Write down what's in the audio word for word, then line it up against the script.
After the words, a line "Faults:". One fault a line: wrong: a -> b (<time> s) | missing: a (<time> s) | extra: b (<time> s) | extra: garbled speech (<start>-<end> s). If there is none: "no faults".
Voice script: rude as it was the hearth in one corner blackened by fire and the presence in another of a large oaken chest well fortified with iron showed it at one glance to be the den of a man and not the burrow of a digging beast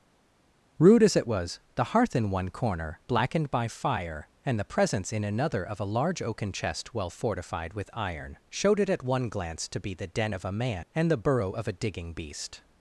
rude as it was the hearth in one corner blackened by fire and the presence in another of a large oaken chest well fortified with iron showed it at one glance to be the den of a man and the burrow of a digging beast
Faults:
missing: not (11.1 s)